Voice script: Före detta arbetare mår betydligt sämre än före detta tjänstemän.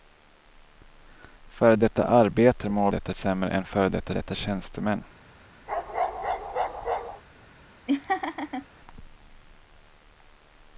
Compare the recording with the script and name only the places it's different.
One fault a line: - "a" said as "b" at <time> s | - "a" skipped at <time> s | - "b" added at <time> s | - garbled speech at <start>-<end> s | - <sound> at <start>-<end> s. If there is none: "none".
- "betydligt" said as "detta" at 2.9 s
- "detta" added at 4.1 s
- bark at 5.7-7.2 s
- laugh at 7.9-8.7 s